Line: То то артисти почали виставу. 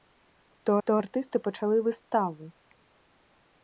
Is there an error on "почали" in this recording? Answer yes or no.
no